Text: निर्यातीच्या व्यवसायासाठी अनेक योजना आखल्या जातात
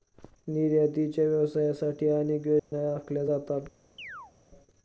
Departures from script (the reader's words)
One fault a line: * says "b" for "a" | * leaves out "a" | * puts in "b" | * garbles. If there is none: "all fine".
all fine